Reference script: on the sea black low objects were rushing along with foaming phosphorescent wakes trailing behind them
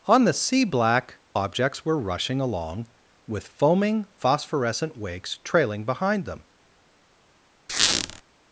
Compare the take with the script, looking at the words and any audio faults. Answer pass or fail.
fail